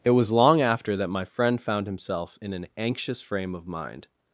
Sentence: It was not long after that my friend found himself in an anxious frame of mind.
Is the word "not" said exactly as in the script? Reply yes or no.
no